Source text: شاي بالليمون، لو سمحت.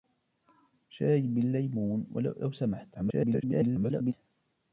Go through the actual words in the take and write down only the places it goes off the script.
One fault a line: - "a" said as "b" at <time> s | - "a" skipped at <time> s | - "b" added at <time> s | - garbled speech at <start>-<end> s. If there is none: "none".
- garbled speech at 2.9-4.1 s